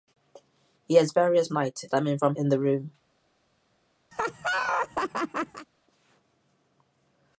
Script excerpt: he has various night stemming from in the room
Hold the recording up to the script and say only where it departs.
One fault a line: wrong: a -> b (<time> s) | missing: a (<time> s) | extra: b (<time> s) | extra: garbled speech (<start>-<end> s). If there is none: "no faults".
no faults